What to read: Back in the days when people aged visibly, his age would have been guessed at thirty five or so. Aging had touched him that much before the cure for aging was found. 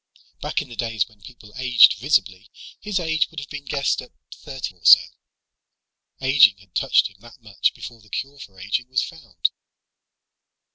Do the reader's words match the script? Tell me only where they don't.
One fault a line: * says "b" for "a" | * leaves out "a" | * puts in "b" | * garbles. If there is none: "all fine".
* leaves out "five"